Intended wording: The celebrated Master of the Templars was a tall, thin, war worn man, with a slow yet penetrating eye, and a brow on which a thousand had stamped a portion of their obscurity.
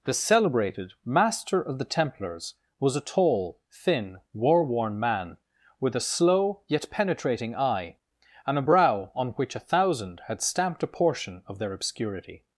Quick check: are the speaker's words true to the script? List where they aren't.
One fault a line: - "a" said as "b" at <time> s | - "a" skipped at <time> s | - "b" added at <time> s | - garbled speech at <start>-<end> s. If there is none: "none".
none